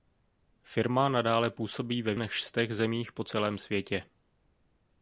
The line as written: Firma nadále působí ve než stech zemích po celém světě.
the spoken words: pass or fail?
pass